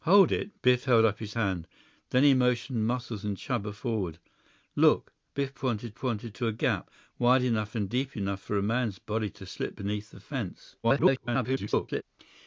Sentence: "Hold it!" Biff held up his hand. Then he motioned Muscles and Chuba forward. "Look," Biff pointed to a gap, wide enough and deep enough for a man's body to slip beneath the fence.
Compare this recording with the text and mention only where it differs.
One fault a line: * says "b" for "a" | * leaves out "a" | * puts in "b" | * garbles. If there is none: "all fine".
* puts in "pointed"
* garbles